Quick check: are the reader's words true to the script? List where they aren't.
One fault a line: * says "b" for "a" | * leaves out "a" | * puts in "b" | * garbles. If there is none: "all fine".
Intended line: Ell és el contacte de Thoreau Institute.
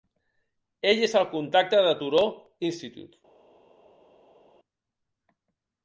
all fine